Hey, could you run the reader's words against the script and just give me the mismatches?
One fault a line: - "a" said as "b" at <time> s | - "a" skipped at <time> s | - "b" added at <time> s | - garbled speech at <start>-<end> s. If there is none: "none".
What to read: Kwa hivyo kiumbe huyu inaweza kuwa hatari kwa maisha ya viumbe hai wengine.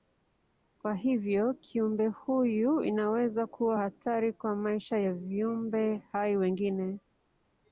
none